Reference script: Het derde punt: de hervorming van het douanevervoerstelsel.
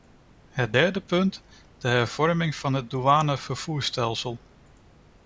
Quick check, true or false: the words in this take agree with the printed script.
true